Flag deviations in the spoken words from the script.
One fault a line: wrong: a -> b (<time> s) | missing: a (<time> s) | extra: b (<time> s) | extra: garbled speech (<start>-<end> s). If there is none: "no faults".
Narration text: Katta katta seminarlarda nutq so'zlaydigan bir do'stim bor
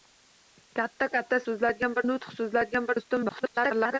wrong: seminarlarda -> so'zlaydigan (1.5 s)
missing: bir (2.9 s)
extra: garbled speech (3.3-4.0 s)